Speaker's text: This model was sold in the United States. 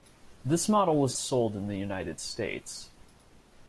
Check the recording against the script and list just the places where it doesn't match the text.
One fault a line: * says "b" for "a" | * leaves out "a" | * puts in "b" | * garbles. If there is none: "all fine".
all fine